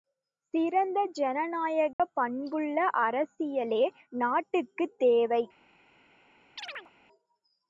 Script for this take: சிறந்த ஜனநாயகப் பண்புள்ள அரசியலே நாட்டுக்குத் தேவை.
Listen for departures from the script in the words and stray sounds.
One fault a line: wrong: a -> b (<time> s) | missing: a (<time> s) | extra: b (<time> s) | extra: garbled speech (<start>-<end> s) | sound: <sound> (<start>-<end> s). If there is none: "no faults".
sound: dropout (1.9-2.0 s)
sound: chirp (6.6-6.9 s)